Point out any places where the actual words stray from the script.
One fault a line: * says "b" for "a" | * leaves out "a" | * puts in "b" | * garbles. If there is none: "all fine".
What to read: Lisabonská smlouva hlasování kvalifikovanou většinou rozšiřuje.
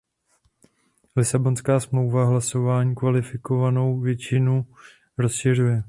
all fine